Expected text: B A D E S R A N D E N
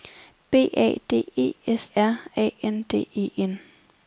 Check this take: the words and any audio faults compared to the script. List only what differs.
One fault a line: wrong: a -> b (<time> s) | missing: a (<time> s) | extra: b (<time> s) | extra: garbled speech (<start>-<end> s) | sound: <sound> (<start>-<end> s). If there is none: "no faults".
no faults